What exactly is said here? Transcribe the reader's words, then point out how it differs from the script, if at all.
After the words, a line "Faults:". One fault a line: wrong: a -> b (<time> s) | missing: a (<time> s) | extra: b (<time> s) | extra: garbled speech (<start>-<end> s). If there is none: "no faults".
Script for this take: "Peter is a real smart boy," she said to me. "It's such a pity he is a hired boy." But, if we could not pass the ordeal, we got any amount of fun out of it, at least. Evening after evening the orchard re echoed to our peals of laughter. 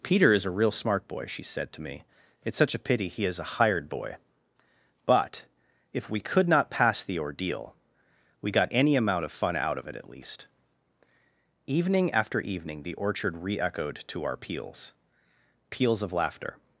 "Peter is a real smart boy," she said to me. "It's such a pity he is a hired boy." But, if we could not pass the ordeal, we got any amount of fun out of it, at least. Evening after evening the orchard re echoed to our peals peals of laughter.
Faults:
extra: peals (15.7 s)